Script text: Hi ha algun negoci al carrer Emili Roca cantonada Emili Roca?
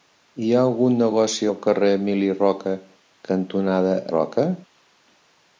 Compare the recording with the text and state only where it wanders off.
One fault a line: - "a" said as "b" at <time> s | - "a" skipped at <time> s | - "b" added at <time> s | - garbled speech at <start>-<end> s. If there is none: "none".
- "Emili" skipped at 4.0 s